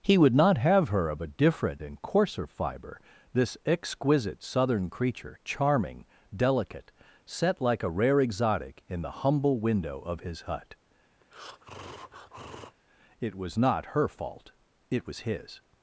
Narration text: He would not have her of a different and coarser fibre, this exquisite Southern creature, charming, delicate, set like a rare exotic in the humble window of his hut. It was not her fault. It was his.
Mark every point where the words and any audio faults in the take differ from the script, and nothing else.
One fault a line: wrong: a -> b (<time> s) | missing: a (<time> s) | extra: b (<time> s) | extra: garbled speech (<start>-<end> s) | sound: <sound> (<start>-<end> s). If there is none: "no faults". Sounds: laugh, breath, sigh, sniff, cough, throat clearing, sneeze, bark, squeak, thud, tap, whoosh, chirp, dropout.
sound: breath (11.2-12.8 s)